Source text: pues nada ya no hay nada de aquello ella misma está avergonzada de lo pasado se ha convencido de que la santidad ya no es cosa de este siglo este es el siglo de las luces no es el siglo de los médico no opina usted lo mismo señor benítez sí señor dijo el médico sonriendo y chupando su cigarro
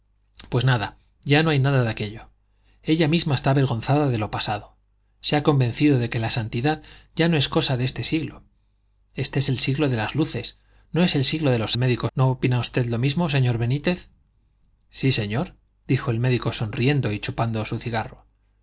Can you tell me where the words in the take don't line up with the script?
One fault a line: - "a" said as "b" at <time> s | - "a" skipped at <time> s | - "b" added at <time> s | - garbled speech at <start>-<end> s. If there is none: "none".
none